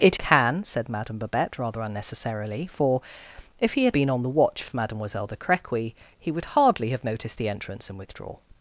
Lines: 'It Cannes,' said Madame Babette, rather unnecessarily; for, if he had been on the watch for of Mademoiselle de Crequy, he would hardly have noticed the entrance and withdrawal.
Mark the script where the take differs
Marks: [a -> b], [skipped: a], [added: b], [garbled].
'It Cannes,' said Madame Babette, rather unnecessarily; for, if he had been on the watch for of Mademoiselle de Crequy, he would hardly have noticed the entrance and withdrawal.